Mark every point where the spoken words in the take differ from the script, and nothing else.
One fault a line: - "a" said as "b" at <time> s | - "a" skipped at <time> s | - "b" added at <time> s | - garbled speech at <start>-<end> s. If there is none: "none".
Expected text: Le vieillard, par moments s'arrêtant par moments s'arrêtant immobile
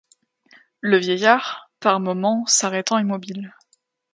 - "par moments s'arrêtant" skipped at 3.0 s